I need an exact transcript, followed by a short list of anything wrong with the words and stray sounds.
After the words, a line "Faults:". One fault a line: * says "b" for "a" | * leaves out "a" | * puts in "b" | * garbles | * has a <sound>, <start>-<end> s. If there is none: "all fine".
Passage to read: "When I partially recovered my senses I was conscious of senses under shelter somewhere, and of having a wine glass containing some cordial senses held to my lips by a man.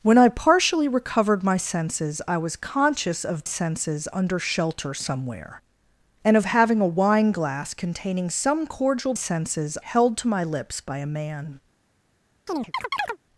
"When I partially recovered my senses I was conscious of senses under shelter somewhere, and of having a wine glass containing some cordial senses held to my lips by a man.
Faults:
* has a chirp, 12.5-13.2 s